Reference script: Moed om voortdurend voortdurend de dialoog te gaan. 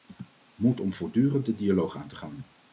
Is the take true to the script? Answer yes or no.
no